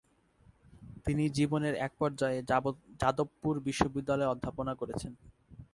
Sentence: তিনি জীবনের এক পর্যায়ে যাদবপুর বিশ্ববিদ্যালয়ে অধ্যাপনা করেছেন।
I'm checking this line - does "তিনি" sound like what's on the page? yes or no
yes